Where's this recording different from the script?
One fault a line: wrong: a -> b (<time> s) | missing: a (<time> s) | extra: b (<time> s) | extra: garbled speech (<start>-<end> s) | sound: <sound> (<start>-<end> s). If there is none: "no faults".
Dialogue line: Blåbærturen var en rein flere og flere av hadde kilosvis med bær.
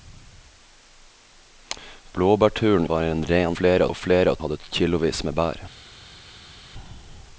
no faults